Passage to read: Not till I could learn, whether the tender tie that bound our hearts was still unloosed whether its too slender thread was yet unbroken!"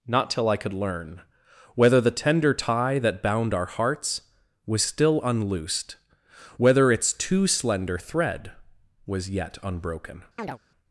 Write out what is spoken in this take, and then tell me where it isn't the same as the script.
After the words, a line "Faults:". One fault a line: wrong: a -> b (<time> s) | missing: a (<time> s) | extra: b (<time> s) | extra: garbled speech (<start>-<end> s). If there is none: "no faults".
Not till I could learn, whether the tender tie that bound our hearts was still unloosed whether its too slender thread was yet unbroken!"
Faults:
no faults